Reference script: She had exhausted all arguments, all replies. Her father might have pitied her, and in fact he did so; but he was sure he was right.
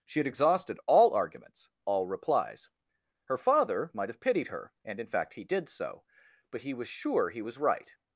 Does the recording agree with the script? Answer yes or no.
yes